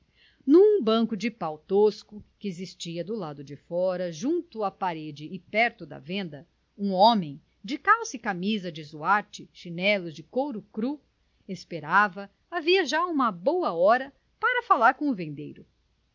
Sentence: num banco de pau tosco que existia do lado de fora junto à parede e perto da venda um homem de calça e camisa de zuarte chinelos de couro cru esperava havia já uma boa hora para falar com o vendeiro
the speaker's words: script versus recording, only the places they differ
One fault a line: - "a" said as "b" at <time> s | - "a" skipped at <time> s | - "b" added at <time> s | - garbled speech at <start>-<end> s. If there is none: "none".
none